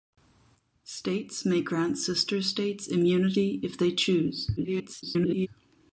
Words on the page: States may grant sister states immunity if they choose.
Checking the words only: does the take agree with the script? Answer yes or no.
no